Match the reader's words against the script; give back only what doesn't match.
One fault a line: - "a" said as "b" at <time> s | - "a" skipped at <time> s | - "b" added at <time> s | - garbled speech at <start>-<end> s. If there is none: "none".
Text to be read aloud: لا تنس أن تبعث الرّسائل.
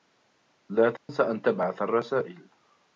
none